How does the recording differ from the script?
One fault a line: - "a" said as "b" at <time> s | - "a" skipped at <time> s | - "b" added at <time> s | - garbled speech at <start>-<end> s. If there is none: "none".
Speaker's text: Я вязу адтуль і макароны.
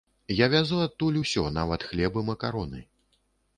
- "усё нават хлеб" added at 1.2 s